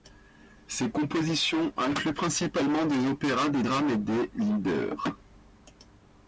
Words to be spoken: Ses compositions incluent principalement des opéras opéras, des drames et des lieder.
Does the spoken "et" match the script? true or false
true